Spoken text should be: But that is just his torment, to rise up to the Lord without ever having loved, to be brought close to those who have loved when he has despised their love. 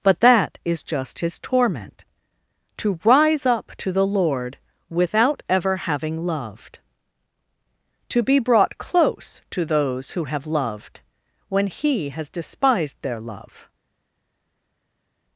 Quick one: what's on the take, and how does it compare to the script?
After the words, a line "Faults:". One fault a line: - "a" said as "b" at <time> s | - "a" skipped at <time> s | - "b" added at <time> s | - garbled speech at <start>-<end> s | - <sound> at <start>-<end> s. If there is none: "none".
But that is just his torment, to rise up to the Lord without ever having loved, to be brought close to those who have loved when he has despised their love.
Faults:
none